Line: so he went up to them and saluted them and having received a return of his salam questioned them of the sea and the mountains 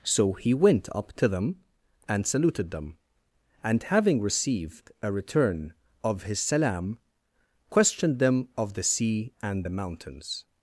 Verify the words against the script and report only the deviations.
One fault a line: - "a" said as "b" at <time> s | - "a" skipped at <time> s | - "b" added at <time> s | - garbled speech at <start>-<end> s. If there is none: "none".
none